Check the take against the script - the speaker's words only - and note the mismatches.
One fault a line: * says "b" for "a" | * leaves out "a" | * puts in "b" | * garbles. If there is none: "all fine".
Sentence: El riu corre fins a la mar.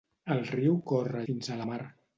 all fine